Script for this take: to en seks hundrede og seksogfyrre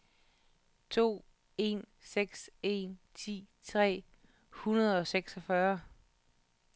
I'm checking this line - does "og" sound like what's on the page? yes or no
yes